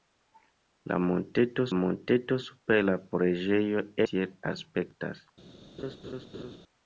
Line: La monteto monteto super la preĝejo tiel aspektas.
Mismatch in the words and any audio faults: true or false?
true